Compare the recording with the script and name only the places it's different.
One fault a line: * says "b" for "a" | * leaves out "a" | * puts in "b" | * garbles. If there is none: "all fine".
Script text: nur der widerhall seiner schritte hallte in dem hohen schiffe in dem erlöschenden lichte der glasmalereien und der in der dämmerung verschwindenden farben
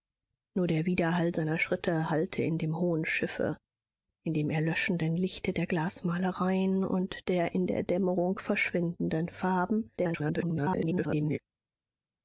* garbles